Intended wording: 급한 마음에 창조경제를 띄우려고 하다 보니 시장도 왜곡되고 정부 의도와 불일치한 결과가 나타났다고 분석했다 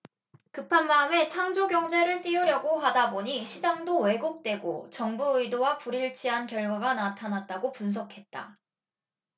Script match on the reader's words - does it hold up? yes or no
yes